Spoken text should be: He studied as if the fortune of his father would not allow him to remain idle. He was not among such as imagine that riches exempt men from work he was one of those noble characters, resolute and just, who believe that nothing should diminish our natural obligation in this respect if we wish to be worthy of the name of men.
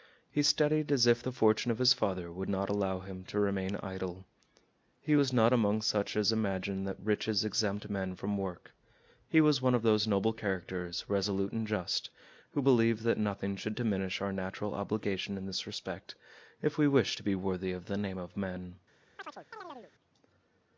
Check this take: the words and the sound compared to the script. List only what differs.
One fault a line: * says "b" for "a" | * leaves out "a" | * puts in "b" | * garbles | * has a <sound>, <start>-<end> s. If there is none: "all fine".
* has a chirp, 19.2-19.9 s